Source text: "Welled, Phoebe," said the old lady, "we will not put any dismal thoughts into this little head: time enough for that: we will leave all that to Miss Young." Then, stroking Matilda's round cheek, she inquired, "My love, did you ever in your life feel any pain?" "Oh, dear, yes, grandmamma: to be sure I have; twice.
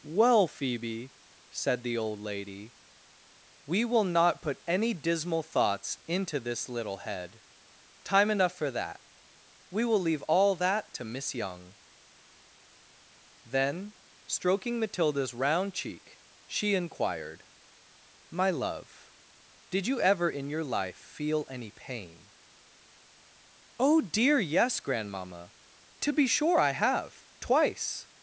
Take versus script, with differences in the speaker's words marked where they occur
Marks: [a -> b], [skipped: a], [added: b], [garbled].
["Welled, -> Well] Phoebe," said the old lady, "we will not put any dismal thoughts into this little head: time enough for that: we will leave all that to Miss Young." Then, stroking Matilda's round cheek, she inquired, "My love, did you ever in your life feel any pain?" "Oh, dear, yes, grandmamma: to be sure I have; twice.